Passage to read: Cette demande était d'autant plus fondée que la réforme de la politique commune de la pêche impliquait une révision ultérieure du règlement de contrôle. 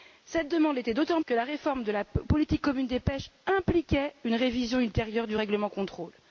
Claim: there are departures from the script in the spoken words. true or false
true